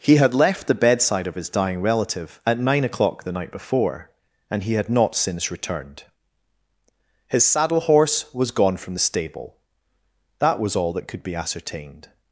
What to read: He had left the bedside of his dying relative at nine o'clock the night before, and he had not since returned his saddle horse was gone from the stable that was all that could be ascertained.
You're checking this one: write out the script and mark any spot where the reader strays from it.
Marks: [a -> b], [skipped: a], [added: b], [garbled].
He had left the bedside of his dying relative at nine o'clock the night before, and he had not since returned his saddle horse was gone from the stable that was all that could be ascertained.